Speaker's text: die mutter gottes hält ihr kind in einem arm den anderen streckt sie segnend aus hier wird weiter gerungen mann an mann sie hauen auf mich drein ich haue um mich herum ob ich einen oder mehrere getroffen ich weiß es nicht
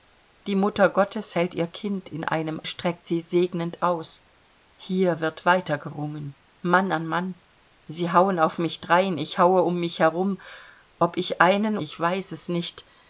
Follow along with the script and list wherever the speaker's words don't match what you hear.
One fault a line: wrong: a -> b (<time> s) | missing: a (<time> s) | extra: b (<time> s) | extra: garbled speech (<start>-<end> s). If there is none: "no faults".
missing: arm den anderen (2.6 s)
missing: oder mehrere getroffen (11.8 s)